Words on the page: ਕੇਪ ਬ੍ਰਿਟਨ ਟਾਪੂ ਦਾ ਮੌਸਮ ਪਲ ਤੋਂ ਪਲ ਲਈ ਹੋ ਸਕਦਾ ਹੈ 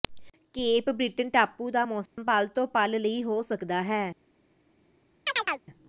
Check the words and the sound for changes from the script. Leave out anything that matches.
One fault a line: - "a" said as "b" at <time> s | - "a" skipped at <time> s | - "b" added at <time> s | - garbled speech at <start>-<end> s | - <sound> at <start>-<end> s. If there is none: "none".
- dropout at 2.1-2.2 s
- chirp at 5.3-5.6 s